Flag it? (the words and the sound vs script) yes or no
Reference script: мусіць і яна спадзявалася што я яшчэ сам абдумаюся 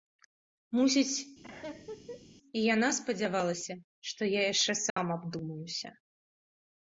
yes